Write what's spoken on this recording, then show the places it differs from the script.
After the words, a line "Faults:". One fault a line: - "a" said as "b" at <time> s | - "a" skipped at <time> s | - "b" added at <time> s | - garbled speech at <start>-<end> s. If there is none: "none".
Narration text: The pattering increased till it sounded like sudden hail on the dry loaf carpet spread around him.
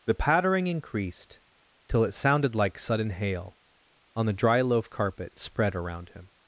The pattering increased till it sounded like sudden hail on the dry loaf carpet spread around him.
Faults:
none